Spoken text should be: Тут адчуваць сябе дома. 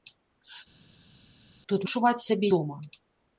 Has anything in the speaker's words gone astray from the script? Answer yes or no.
no